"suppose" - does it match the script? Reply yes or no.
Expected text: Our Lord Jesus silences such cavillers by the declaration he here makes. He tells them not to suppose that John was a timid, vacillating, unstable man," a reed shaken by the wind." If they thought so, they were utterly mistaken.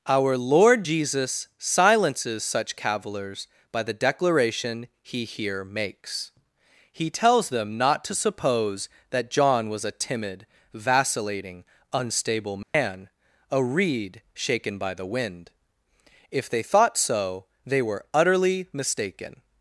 yes